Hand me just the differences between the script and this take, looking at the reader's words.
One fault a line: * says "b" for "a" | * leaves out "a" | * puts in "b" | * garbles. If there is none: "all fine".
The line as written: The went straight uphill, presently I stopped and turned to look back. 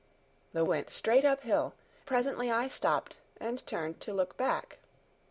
all fine